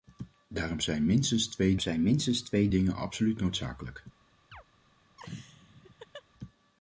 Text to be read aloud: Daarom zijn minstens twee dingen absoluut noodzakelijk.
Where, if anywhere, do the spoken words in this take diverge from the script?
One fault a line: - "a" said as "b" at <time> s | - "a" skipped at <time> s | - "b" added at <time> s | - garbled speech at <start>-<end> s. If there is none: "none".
- "zijn minstens twee" added at 1.8 s